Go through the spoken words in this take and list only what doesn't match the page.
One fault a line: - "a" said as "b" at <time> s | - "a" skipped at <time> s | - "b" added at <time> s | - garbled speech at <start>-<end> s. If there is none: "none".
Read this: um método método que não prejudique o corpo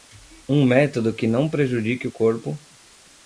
- "método" skipped at 1.1 s